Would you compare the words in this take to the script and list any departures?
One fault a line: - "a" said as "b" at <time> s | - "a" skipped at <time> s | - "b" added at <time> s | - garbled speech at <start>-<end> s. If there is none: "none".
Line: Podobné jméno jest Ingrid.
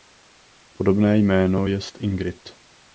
none